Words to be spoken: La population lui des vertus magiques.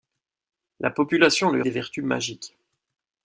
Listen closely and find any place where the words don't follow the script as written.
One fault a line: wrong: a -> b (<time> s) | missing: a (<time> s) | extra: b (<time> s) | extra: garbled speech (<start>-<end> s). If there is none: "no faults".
no faults